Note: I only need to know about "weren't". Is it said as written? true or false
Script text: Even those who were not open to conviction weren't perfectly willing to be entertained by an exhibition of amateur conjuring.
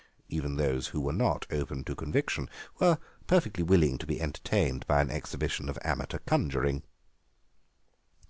false